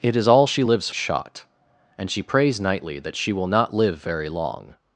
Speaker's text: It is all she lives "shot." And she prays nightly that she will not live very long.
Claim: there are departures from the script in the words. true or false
false